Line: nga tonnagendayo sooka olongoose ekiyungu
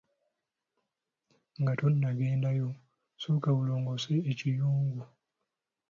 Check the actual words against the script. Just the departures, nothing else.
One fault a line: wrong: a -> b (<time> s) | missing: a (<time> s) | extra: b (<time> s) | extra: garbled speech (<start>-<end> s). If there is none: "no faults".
no faults